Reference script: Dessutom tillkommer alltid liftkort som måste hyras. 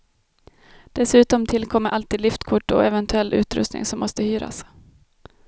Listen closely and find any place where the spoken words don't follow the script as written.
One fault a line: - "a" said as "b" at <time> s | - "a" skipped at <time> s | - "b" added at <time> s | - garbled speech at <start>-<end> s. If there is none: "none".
- "och eventuell utrustning" added at 2.7 s